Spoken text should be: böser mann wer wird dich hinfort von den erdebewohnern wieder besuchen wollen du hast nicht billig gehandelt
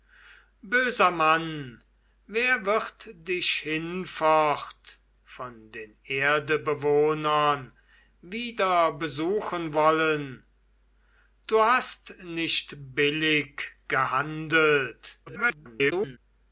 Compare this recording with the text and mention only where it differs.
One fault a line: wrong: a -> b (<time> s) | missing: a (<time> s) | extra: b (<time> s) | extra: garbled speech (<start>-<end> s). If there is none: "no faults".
extra: garbled speech (15.3-16.2 s)